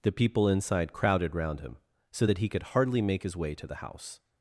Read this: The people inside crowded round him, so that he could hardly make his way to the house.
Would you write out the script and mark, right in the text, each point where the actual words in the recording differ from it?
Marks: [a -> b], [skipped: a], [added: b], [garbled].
The people inside crowded round him, so that he could hardly make his way to the house.